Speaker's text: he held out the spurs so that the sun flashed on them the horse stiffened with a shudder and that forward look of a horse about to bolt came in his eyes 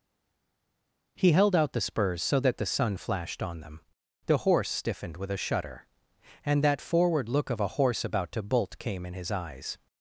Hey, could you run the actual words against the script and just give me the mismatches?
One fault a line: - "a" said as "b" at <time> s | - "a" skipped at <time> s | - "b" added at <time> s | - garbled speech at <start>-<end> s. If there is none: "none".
none